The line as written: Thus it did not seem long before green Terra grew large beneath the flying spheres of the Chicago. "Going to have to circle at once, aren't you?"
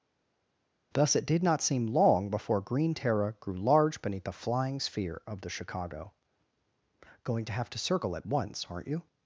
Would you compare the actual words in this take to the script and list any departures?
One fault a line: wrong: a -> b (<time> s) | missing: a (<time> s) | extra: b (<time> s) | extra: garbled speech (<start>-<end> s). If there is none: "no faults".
wrong: spheres -> sphere (4.8 s)